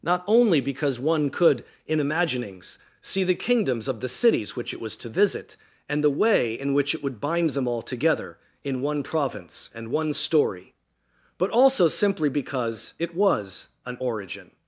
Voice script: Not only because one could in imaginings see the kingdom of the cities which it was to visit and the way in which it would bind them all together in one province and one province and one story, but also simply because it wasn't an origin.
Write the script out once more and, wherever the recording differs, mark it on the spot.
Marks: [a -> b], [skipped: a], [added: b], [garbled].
Not only because one could in imaginings see the [kingdom -> kingdoms] of the cities which it was to visit and the way in which it would bind them all together in one province and one [skipped: province and one] story, but also simply because it [wasn't -> was] an origin.